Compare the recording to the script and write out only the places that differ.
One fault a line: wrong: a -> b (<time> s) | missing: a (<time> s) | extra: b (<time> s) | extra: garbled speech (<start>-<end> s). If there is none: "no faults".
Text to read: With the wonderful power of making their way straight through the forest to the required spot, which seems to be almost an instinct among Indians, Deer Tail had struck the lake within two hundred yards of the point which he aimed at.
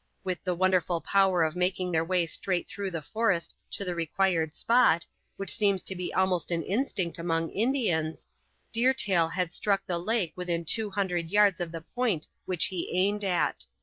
no faults